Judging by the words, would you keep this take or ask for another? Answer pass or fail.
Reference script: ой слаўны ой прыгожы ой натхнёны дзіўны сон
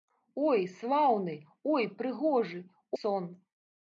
fail